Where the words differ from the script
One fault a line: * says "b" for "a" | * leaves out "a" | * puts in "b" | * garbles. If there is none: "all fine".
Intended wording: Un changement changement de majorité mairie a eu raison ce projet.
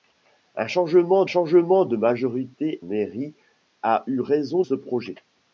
all fine